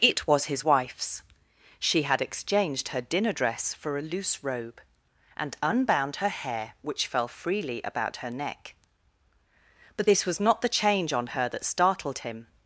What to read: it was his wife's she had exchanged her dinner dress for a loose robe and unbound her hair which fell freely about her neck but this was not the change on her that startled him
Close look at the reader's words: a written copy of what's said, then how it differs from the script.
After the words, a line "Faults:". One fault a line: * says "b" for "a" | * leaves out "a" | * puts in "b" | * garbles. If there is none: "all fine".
it was his wife's she had exchanged her dinner dress for a loose robe and unbound her hair which fell freely about her neck but this was not the change on her that startled him
Faults:
all fine